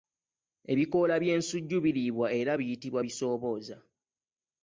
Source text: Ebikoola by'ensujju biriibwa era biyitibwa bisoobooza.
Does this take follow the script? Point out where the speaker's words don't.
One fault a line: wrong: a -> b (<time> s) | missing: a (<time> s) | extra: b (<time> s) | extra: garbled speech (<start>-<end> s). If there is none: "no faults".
no faults